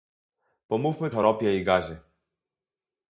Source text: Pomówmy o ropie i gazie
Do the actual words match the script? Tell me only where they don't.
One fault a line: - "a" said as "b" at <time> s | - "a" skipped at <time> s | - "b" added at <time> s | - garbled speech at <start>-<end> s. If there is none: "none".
none